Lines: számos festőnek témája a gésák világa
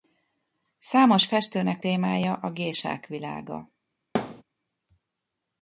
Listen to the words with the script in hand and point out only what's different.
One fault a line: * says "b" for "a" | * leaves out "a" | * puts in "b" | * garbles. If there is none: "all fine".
all fine